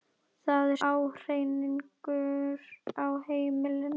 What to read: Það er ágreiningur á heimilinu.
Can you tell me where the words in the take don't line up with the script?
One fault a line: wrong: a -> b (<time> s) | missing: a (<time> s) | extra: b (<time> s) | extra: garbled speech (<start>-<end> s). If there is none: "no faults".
no faults